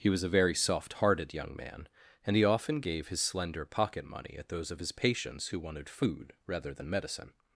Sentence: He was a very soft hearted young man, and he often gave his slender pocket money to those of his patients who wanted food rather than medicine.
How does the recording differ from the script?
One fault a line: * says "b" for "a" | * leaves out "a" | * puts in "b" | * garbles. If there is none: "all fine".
* says "at" for "to"